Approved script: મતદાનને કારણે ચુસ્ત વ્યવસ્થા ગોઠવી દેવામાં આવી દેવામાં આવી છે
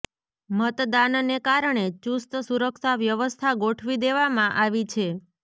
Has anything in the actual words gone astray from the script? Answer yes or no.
yes